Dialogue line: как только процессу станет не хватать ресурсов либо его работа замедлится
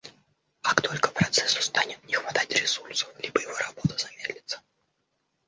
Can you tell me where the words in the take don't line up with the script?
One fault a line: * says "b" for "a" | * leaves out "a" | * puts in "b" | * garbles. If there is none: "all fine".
all fine